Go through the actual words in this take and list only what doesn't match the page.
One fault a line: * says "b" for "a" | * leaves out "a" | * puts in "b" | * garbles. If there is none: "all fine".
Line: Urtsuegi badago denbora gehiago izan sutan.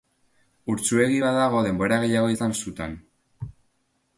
all fine